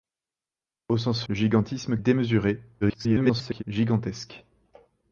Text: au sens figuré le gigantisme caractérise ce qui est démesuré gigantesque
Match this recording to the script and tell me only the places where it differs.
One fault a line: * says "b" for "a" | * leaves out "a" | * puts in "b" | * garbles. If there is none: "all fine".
* leaves out "figuré"
* leaves out "caractérise ce qui"
* garbles